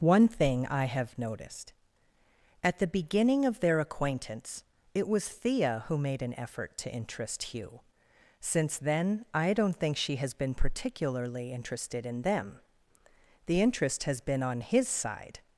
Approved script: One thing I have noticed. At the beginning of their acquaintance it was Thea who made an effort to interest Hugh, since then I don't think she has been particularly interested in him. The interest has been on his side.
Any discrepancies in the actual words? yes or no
yes